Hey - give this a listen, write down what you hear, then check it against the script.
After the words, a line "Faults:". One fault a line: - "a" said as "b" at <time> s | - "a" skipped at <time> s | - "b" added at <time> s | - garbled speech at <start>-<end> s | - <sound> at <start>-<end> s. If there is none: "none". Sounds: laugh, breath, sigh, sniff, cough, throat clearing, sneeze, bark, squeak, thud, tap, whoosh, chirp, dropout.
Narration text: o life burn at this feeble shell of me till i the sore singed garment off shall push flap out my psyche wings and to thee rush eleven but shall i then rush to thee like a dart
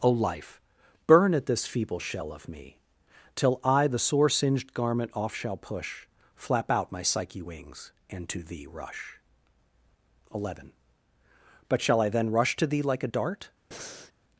o life burn at this feeble shell of me till i the sore singed garment off shall push flap out my psyche wings and to thee rush eleven but shall i then rush to thee like a dart
Faults:
- breath at 13.7-14.1 s